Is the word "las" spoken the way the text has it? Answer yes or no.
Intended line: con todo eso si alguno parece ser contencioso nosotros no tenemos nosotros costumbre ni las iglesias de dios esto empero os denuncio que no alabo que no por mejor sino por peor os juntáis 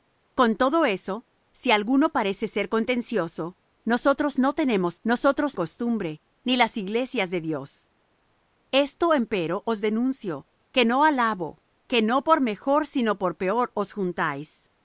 yes